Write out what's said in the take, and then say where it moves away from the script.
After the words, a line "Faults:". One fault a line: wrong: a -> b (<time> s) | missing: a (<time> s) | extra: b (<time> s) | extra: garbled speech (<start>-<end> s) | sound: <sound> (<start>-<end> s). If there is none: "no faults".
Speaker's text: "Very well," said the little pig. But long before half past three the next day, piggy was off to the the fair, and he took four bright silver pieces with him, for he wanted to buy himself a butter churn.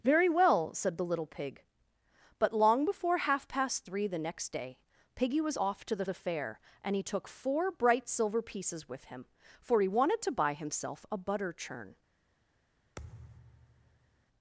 "Very well," said the little pig. But long before half past three the next day, piggy was off to the the fair, and he took four bright silver pieces with him, for he wanted to buy himself a butter churn.
Faults:
sound: thud (13.0-14.3 s)